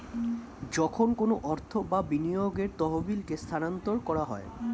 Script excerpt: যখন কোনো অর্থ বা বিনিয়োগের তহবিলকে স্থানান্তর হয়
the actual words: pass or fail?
fail